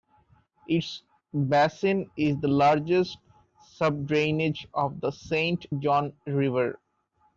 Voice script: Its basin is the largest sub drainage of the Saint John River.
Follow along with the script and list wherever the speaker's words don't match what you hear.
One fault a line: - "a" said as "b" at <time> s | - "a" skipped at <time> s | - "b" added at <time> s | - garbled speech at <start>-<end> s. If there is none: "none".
none